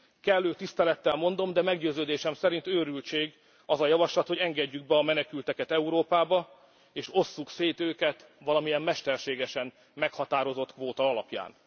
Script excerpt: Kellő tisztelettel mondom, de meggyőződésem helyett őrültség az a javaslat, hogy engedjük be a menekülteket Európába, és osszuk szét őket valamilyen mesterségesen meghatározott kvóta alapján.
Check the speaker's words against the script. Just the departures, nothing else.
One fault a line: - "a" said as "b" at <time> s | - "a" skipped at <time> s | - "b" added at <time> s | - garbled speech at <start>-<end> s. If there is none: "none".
- "helyett" said as "szerint" at 2.3 s